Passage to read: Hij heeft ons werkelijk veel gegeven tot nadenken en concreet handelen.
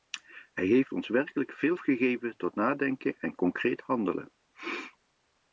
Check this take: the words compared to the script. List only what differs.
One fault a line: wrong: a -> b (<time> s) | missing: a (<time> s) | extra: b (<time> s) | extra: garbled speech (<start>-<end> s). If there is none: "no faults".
no faults